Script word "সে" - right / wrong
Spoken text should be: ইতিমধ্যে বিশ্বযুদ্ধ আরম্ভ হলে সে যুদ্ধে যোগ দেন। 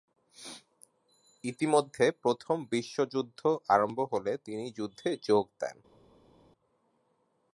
wrong